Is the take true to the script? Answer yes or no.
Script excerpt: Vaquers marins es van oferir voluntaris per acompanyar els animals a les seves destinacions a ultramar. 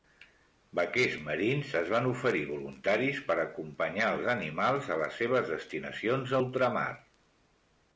yes